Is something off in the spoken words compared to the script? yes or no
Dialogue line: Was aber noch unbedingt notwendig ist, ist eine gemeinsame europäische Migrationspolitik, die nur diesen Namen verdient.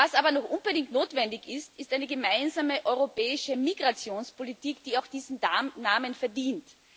yes